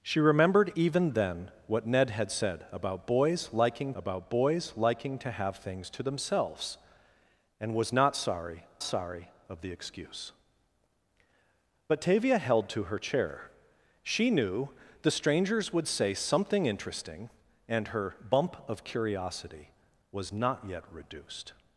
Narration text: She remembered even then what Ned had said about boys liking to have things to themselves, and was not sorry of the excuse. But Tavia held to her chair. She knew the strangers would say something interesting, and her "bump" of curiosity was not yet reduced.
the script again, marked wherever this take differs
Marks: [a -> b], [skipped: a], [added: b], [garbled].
She remembered even then what Ned had said about boys liking [added: about boys liking] to have things to themselves, and was not sorry [added: sorry] of the excuse. But Tavia held to her chair. She knew the strangers would say something interesting, and her "bump" of curiosity was not yet reduced.